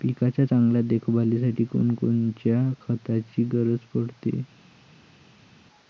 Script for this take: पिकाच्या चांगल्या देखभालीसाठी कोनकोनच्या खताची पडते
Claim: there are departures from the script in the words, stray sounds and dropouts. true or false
true